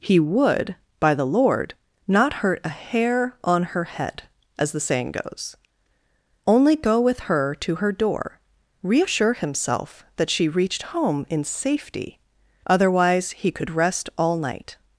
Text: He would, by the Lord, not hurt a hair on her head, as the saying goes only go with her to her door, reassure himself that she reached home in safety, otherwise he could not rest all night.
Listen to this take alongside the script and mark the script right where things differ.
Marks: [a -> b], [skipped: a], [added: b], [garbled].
He would, by the Lord, not hurt a hair on her head, as the saying goes only go with her to her door, reassure himself that she reached home in safety, otherwise he could [skipped: not] rest all night.